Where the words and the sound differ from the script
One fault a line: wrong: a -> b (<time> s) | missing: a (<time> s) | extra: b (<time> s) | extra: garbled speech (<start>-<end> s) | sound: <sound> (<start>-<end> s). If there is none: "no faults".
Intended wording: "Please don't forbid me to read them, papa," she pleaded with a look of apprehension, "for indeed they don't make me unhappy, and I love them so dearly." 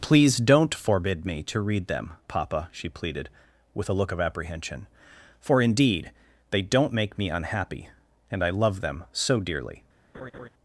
sound: laugh (10.1-10.5 s)